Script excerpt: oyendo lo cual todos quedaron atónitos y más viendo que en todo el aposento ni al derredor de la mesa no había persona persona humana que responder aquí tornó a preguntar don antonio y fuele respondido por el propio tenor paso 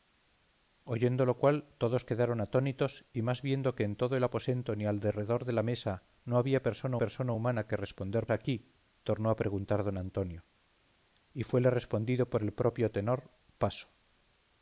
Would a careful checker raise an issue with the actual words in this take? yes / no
no